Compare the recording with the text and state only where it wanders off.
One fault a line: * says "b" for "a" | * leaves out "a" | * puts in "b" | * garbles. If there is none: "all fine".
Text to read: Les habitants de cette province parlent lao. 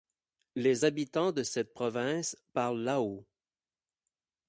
all fine